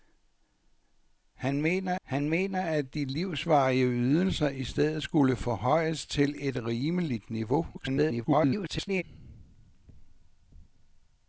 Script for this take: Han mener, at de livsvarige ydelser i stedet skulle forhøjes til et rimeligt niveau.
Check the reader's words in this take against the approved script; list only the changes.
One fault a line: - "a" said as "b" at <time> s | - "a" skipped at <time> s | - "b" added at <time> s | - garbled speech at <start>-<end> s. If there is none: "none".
- "han mener" added at 2.0 s
- garbled speech at 7.7-9.0 s